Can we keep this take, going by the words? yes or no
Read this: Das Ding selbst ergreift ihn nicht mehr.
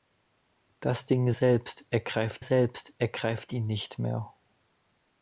no